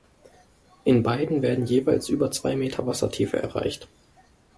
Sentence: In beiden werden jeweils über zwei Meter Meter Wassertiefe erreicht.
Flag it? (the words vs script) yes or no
yes